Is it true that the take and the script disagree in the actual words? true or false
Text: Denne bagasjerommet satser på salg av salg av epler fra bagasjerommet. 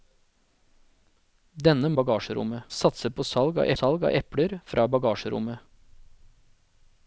false